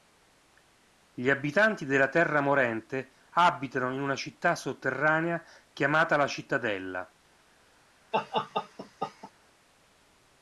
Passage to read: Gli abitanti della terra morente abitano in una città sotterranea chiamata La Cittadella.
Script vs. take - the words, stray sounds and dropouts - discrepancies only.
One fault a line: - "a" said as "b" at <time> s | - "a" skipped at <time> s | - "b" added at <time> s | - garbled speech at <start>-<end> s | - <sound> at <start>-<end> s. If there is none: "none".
- laugh at 8.1-9.3 s